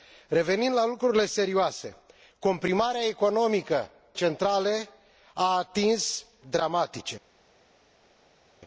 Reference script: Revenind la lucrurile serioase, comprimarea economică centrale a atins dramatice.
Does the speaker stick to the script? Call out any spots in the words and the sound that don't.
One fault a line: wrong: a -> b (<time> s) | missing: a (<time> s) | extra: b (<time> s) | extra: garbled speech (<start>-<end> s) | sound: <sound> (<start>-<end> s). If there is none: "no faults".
no faults